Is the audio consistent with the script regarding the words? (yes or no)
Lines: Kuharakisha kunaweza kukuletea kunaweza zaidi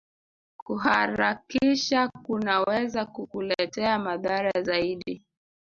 no